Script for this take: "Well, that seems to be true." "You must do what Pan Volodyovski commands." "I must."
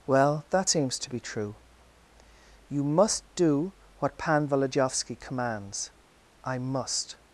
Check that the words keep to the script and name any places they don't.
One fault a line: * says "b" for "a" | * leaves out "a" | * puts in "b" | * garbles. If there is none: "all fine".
all fine